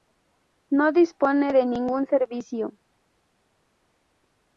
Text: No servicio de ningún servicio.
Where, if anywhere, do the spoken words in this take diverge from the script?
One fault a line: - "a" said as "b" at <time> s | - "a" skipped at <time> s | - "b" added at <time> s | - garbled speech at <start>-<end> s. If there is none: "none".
- "servicio" said as "dispone" at 0.9 s